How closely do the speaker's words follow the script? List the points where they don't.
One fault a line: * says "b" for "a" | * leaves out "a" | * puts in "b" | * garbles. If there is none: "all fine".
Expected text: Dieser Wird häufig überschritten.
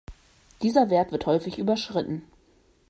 * puts in "Wert"